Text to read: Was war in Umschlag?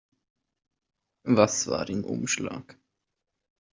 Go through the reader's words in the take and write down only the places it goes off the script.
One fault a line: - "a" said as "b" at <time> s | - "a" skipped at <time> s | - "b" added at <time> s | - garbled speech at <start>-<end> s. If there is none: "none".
none